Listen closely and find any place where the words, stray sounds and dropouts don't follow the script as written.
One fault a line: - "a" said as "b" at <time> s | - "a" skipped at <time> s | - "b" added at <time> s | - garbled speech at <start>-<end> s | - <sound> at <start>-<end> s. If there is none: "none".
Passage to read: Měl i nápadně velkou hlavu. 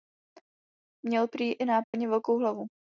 - "prý" added at 1.3 s
- dropout at 1.8-1.9 s